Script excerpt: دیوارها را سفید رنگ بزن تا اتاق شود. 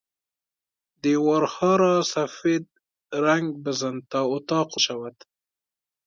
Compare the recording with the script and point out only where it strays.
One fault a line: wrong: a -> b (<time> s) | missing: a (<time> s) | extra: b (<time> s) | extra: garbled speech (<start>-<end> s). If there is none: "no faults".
no faults